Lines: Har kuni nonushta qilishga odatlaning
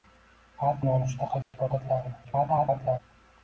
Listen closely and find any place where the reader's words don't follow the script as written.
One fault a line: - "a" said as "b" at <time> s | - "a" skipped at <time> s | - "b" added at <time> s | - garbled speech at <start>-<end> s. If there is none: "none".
- "kuni" skipped at 0.8 s
- garbled speech at 2.2-3.0 s